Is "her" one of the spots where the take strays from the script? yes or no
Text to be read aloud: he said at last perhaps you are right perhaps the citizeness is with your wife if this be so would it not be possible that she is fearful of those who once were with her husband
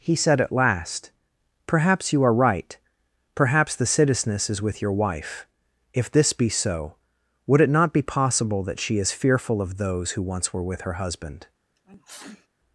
no